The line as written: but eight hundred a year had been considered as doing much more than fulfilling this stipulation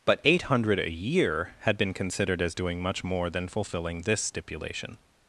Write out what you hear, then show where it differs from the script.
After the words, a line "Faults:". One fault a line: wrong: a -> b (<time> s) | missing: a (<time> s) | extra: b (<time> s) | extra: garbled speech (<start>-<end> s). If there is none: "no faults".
but eight hundred a year had been considered as doing much more than fulfilling this stipulation
Faults:
no faults